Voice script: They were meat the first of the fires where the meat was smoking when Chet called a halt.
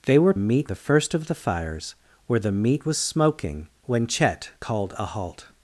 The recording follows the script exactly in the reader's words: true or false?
true